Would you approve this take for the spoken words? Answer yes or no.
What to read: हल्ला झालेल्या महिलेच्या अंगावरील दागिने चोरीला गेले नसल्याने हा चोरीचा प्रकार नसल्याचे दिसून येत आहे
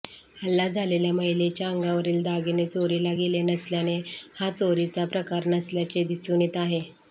yes